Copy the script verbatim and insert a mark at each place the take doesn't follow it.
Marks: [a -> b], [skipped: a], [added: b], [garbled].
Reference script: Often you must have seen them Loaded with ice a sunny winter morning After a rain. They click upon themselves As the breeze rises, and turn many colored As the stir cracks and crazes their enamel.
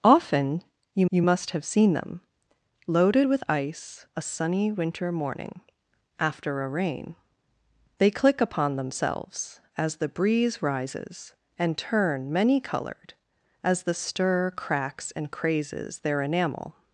Often you [added: you] must have seen them Loaded with ice a sunny winter morning After a rain. They click upon themselves As the breeze rises, and turn many colored As the stir cracks and crazes their enamel.